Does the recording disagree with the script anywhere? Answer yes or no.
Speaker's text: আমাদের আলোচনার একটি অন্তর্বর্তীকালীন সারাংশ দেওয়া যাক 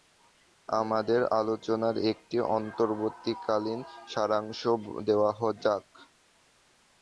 no